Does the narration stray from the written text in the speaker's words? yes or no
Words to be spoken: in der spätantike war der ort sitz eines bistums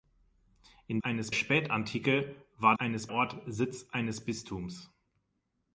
yes